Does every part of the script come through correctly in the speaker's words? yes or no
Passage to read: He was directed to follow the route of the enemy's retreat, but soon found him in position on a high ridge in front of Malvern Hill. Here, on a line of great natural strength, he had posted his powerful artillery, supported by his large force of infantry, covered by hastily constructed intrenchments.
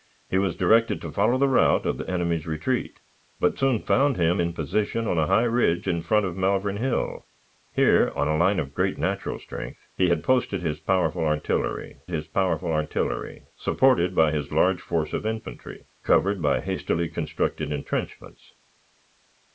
no